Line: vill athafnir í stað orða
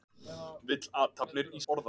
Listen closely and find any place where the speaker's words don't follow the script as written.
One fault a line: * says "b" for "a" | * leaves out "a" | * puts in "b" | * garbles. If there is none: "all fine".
* leaves out "stað"